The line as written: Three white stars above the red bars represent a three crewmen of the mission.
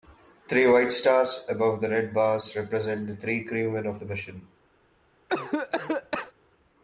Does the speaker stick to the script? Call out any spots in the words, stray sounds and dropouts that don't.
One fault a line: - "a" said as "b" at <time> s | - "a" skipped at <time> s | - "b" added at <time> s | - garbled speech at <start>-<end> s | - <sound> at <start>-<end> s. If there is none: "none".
- "a" said as "the" at 3.0 s
- cough at 5.3-6.3 s